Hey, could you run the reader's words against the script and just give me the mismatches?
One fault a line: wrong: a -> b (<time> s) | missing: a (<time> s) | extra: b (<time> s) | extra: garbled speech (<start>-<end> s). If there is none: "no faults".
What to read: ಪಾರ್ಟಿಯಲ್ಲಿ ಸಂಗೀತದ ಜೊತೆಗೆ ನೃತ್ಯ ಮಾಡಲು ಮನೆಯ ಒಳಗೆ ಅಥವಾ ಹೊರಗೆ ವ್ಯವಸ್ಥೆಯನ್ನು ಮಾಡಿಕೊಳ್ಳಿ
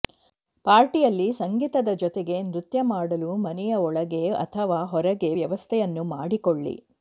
no faults